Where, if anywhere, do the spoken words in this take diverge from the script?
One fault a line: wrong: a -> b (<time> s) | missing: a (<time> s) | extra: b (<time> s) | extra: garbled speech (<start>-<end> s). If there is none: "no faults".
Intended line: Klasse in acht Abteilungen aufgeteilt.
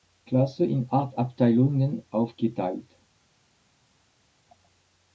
no faults